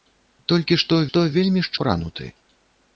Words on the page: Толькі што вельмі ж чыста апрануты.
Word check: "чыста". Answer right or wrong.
wrong